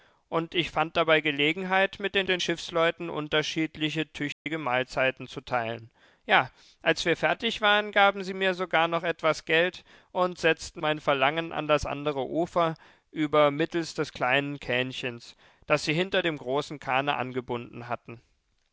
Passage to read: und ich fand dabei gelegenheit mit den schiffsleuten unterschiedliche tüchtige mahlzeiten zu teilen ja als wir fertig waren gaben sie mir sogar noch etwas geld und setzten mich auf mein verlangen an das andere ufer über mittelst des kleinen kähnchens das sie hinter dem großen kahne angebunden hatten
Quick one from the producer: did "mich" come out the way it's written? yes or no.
no